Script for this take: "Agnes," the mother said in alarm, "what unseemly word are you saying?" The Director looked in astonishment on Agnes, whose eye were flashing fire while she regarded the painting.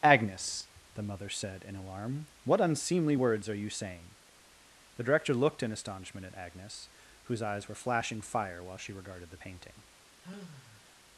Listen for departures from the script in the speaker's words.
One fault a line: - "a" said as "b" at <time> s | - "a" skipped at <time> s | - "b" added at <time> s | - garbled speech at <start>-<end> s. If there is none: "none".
- "word" said as "words" at 3.1 s
- "on" said as "at" at 6.2 s
- "eye" said as "eyes" at 7.4 s